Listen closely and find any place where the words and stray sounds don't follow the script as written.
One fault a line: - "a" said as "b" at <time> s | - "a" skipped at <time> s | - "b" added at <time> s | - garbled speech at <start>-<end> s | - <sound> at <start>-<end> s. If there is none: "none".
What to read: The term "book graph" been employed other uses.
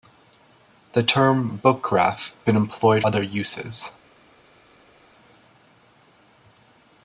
none